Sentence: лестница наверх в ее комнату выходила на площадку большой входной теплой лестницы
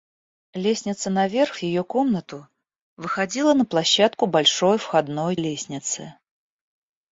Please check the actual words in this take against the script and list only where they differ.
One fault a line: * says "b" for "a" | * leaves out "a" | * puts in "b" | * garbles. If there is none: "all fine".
* leaves out "теплой"